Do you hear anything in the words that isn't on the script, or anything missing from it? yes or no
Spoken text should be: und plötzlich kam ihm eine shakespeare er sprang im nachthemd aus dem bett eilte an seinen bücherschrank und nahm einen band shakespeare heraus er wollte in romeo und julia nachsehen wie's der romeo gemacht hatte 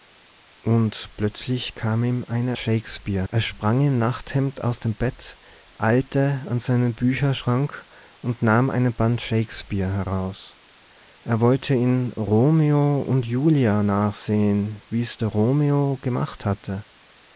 no